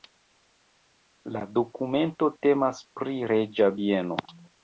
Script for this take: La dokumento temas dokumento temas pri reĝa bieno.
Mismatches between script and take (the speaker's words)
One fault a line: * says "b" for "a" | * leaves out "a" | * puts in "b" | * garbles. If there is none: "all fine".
* leaves out "dokumento temas"